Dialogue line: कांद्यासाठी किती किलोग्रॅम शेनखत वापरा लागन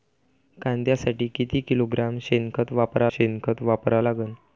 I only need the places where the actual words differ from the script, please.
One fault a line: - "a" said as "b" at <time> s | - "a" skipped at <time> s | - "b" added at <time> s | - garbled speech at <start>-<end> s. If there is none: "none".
- "शेनखत वापरा" added at 3.1 s